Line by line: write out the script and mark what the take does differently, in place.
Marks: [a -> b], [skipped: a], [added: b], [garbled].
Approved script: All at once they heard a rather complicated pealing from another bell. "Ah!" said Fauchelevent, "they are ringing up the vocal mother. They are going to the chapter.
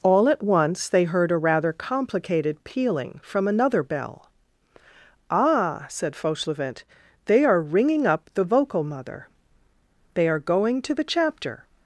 All at once they heard a rather complicated pealing from another bell. "Ah!" said Fauchelevent, "they are ringing up the vocal mother. They are going to the chapter.